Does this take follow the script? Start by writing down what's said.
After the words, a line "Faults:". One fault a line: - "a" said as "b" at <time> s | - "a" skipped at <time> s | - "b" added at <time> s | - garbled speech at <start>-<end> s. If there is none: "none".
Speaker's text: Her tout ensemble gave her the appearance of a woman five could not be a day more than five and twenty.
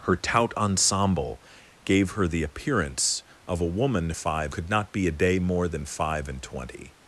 Her tout ensemble gave her the appearance of a woman five could not be a day more than five and twenty.
Faults:
none